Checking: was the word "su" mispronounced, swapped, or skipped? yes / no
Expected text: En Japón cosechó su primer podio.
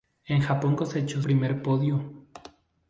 yes